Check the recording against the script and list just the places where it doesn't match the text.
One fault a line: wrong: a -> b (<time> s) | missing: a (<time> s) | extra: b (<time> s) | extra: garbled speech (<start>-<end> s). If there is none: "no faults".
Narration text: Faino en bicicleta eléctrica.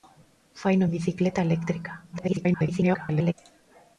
extra: garbled speech (2.1-3.3 s)